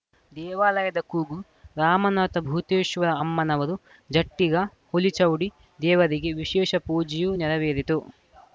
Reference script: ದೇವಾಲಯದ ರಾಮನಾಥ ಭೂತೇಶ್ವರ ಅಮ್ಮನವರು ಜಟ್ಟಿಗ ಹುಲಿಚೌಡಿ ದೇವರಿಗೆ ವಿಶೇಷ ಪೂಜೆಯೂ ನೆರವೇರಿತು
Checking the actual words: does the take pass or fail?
fail